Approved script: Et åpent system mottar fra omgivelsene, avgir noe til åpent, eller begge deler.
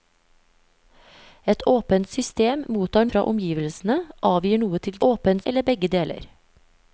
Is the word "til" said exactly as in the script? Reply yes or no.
yes